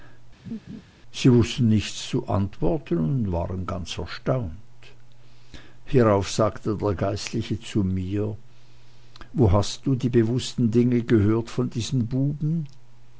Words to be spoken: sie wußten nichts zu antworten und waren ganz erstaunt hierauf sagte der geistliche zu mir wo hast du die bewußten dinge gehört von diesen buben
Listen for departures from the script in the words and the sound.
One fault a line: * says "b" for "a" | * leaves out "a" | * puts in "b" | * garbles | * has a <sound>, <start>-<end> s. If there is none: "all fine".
* has a laugh, 0.4-0.8 s